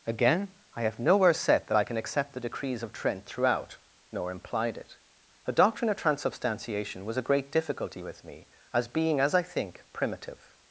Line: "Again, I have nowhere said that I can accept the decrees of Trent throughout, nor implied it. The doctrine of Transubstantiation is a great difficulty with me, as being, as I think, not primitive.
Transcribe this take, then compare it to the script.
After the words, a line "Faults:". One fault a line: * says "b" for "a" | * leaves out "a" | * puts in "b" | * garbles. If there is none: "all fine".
"Again, I have nowhere said that I can accept the decrees of Trent throughout, nor implied it. The doctrine of Transubstantiation was a great difficulty with me, as being, as I think, primitive.
Faults:
* says "was" for "is"
* leaves out "not"